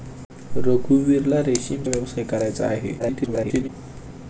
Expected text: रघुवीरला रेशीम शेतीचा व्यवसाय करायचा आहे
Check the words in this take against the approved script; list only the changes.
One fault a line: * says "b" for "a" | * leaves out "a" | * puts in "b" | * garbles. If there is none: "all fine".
* leaves out "शेतीचा"
* garbles